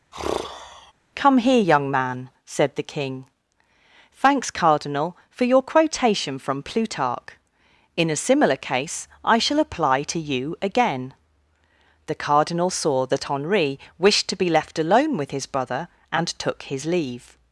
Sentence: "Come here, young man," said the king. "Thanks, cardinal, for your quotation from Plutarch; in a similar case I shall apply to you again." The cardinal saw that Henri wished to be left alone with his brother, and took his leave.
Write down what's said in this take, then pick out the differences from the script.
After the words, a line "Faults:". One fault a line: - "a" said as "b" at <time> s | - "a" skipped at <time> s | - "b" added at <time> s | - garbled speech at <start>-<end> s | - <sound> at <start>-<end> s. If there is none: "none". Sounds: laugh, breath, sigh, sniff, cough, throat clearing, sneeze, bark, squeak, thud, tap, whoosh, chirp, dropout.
"Come here, young man," said the king. "Thanks, cardinal, for your quotation from Plutarch; in a similar case I shall apply to you again." The cardinal saw that Henri wished to be left alone with his brother, and took his leave.
Faults:
- sigh at 0.1-0.9 s